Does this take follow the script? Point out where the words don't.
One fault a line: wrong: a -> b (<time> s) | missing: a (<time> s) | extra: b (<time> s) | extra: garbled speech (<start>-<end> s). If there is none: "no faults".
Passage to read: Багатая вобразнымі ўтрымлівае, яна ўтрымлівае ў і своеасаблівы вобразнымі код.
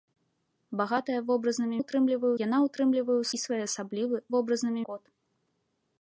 no faults